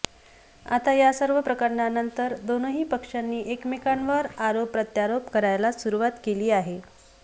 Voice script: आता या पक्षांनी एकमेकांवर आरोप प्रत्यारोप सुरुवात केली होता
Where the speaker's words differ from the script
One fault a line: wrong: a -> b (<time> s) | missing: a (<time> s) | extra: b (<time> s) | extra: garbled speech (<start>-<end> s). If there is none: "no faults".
extra: सर्व प्रकरणानंतर दोनही (1.1 s)
extra: करायला (5.3 s)
wrong: होता -> आहे (6.5 s)